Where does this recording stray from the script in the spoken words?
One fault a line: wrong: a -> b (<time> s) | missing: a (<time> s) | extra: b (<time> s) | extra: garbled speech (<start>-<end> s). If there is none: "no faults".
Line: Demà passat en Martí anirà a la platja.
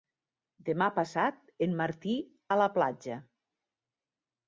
missing: anirà (2.1 s)